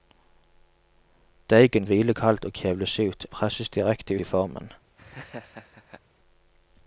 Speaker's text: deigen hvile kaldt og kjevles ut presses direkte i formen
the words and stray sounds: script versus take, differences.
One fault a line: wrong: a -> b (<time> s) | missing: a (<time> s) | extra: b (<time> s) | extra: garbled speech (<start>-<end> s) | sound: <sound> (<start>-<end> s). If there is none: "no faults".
sound: laugh (5.0-6.0 s)